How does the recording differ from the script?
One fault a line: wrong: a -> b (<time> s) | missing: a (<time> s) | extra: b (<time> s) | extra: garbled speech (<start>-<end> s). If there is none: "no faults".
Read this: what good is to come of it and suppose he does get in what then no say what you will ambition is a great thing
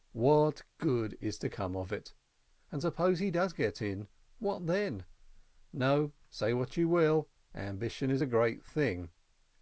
no faults